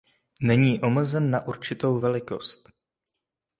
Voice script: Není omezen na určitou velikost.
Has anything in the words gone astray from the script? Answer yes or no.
no